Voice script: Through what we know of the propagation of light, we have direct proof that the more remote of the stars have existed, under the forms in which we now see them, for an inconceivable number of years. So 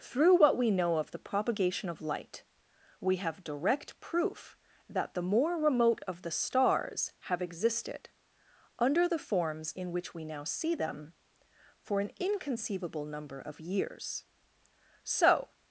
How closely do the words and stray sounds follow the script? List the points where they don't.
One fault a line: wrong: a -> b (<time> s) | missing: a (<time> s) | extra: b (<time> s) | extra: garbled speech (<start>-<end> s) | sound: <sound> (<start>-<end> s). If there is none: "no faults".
no faults